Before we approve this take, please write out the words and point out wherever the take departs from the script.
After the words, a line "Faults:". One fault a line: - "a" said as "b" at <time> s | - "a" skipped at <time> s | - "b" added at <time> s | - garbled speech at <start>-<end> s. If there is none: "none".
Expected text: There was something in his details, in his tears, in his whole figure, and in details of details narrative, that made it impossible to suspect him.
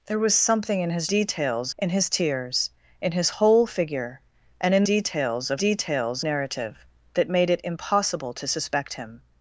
There was something in his details, in his tears, in his whole figure, and in details of details narrative, that made it impossible to suspect him.
Faults:
none